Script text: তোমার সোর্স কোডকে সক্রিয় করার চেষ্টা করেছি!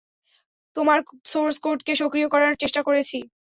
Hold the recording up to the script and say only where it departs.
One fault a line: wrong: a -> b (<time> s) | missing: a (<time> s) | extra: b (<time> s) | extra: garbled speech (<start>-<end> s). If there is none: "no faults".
no faults